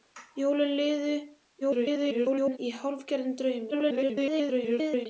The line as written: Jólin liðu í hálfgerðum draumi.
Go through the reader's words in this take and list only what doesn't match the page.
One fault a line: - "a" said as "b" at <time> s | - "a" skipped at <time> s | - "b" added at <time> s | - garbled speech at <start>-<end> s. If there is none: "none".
- garbled speech at 1.6-2.6 s
- garbled speech at 3.7-5.1 s